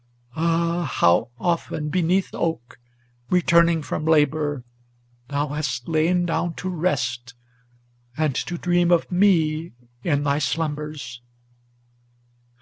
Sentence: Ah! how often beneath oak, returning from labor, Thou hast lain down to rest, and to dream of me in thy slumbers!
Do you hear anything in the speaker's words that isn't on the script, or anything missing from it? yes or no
no